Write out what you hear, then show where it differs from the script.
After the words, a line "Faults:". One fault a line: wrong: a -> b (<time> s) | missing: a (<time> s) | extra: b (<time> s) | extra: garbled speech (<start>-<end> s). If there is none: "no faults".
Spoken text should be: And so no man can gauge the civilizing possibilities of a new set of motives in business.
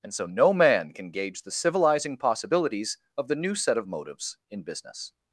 And so no man can gauge the civilizing possibilities of the new set of motives in business.
Faults:
wrong: a -> the (3.3 s)